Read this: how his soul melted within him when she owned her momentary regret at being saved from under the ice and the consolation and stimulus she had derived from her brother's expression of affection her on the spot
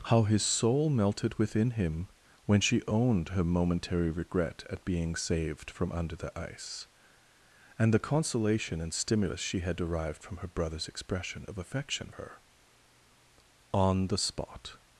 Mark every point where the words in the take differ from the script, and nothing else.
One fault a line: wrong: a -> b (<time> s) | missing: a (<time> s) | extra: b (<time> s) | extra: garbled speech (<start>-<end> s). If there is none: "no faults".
no faults